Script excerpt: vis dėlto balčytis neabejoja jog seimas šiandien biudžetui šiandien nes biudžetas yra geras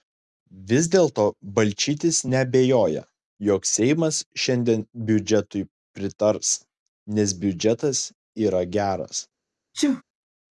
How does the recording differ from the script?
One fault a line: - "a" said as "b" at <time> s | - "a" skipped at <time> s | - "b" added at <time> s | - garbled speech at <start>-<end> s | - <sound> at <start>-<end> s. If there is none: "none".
- "šiandien" said as "pritars" at 6.0 s
- sneeze at 9.7-10.0 s